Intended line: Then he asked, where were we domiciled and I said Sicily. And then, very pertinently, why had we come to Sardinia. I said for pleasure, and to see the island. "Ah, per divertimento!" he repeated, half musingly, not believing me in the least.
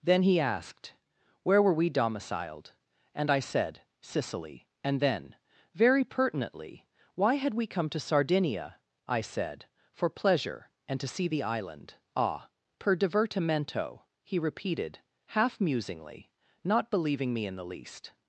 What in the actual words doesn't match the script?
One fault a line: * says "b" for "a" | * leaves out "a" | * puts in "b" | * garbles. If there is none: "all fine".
all fine